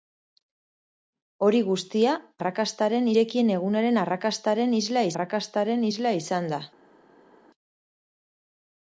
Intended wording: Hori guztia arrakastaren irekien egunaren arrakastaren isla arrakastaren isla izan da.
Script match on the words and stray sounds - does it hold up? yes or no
yes